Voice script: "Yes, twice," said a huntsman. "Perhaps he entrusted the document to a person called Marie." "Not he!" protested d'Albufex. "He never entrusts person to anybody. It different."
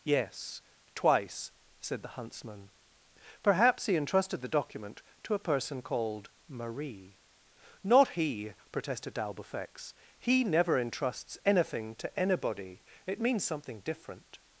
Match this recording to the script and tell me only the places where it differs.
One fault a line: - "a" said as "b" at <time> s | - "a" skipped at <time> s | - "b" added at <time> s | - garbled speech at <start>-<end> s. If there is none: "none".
- "a" said as "the" at 2.0 s
- "person" said as "anything" at 11.4 s
- "means something" added at 13.2 s